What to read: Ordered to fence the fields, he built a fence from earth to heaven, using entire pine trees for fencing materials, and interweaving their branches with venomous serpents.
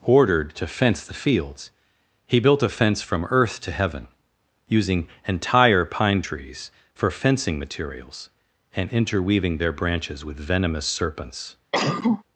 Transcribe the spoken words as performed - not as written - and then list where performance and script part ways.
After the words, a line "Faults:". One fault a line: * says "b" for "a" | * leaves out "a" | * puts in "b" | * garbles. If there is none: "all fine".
Ordered to fence the fields, he built a fence from earth to heaven, using entire pine trees for fencing materials, and interweaving their branches with venomous serpents.
Faults:
all fine